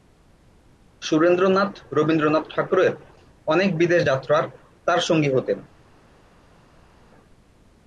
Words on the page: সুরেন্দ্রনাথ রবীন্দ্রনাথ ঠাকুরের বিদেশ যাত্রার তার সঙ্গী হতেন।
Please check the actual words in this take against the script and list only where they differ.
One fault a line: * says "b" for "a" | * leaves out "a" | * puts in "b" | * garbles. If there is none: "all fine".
* puts in "অনেক"